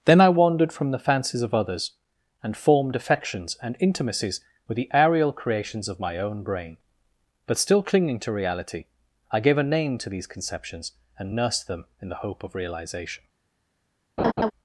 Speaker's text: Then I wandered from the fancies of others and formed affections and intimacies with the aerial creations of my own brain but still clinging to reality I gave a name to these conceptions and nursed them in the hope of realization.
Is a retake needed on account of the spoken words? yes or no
no